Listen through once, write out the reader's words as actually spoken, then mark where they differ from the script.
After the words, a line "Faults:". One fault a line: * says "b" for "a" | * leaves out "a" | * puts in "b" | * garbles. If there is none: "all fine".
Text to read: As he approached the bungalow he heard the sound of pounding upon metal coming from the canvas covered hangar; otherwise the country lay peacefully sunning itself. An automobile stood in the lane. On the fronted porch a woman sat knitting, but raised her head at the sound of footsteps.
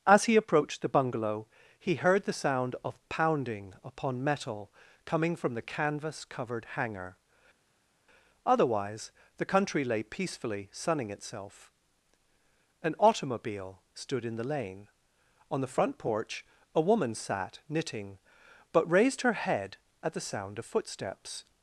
As he approached the bungalow he heard the sound of pounding upon metal coming from the canvas covered hangar; otherwise the country lay peacefully sunning itself. An automobile stood in the lane. On the front porch a woman sat knitting, but raised her head at the sound of footsteps.
Faults:
* says "front" for "fronted"